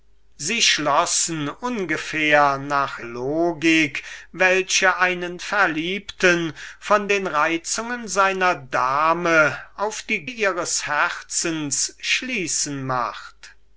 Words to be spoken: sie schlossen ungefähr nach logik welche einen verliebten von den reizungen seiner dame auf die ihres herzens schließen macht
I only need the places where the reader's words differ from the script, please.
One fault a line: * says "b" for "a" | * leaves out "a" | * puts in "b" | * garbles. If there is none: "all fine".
all fine